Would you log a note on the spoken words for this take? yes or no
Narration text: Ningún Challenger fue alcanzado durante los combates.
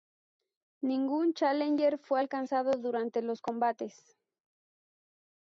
no